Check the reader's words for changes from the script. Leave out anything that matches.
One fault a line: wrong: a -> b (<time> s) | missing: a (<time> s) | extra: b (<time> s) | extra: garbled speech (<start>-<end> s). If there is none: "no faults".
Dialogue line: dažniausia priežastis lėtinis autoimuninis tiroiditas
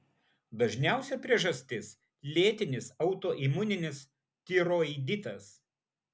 no faults